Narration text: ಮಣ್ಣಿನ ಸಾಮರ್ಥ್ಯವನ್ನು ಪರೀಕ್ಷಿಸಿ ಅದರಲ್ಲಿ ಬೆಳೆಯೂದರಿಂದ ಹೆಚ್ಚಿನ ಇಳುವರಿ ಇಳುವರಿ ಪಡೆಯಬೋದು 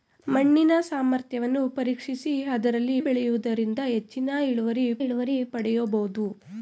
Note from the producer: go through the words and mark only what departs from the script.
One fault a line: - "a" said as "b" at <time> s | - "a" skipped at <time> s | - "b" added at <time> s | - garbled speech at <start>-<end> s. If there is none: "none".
none